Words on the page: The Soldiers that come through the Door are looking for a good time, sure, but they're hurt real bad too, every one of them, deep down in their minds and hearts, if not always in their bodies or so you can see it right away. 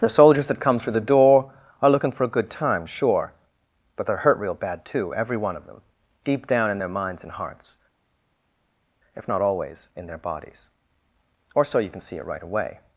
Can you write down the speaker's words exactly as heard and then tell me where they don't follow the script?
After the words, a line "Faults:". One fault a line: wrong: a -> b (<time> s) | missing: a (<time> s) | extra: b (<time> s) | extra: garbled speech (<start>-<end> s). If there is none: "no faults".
The Soldiers that come through the Door are looking for a good time, sure, but they're hurt real bad too, every one of them, deep down in their minds and hearts, if not always in their bodies or so you can see it right away.
Faults:
no faults